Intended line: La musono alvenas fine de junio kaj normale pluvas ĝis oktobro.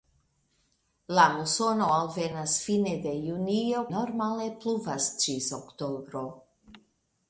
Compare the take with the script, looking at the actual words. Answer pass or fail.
fail